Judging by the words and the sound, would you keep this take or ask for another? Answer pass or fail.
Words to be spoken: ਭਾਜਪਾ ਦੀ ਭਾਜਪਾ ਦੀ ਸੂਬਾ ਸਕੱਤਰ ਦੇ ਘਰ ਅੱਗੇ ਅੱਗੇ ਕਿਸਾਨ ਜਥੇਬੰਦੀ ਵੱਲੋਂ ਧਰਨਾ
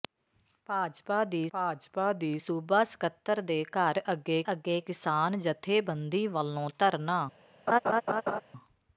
fail